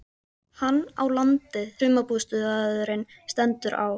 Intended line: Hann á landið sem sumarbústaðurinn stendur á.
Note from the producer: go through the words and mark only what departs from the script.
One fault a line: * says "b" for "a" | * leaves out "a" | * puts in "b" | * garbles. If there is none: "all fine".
* leaves out "sem"